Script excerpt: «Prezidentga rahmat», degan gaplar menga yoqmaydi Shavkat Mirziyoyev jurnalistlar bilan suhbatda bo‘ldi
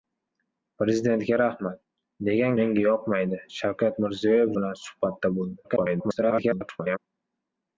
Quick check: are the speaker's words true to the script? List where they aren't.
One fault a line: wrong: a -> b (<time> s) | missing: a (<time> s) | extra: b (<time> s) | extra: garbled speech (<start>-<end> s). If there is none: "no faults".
missing: gaplar (2.6 s)
missing: jurnalistlar (4.5 s)
extra: garbled speech (5.6-7.0 s)